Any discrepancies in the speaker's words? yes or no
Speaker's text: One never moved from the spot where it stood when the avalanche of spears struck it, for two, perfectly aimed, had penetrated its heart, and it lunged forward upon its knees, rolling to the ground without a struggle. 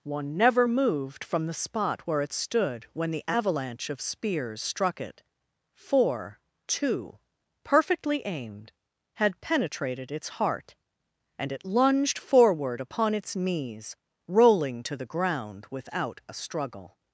no